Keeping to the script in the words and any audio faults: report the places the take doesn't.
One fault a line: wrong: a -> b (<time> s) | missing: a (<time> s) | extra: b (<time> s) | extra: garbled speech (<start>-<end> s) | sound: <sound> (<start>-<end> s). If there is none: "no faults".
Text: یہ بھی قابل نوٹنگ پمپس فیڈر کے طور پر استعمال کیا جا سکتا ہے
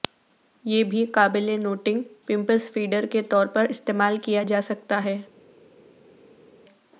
no faults